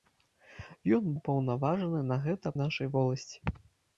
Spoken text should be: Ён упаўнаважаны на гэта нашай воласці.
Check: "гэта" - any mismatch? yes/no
no